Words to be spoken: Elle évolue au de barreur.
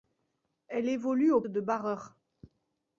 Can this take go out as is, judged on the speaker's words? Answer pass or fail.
pass